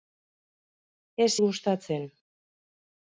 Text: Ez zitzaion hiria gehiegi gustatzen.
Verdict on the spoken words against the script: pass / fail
fail